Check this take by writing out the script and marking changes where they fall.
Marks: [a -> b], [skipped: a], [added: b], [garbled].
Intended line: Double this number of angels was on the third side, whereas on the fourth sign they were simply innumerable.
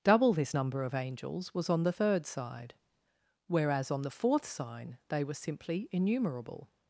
Double this number of angels was on the third side, whereas on the fourth sign they were simply innumerable.